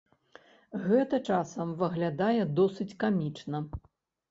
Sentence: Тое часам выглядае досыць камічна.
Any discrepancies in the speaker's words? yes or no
yes